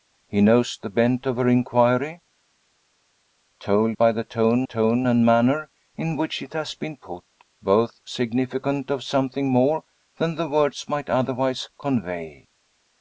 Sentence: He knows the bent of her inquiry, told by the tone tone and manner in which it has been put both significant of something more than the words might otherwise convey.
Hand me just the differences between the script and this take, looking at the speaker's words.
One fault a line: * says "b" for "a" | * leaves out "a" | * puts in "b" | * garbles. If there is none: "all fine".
all fine